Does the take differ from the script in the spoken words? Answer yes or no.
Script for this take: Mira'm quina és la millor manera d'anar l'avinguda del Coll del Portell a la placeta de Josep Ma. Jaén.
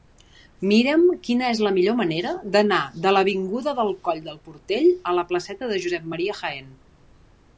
yes